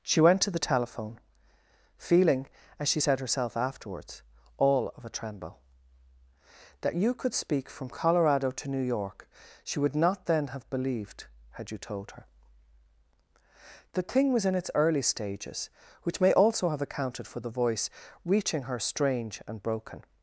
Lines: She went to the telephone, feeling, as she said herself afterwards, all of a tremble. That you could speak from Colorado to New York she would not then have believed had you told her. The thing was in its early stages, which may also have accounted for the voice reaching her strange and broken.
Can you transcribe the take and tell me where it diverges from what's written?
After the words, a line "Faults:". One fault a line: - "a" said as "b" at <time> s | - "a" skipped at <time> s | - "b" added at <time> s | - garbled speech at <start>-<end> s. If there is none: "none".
She went to the telephone, feeling, as she said herself afterwards, all of a tremble. That you could speak from Colorado to New York she would not then have believed had you told her. The thing was in its early stages, which may also have accounted for the voice reaching her strange and broken.
Faults:
none